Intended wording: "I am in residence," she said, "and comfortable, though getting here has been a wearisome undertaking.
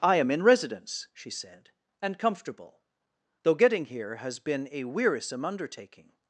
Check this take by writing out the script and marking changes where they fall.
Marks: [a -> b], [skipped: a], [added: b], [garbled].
"I am in residence," she said, "and comfortable, though getting here has been a wearisome undertaking.